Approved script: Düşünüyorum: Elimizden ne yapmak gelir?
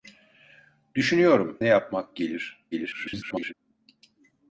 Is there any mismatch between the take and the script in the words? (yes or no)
yes